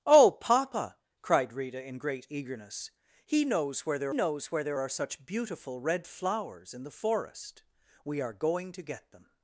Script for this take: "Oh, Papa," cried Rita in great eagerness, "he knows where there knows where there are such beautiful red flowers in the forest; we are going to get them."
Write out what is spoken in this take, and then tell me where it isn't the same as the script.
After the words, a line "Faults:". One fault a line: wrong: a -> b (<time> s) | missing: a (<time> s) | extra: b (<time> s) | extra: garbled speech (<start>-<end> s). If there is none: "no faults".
"Oh, Papa," cried Rita in great eagerness, "he knows where there knows where there are such beautiful red flowers in the forest; we are going to get them."
Faults:
no faults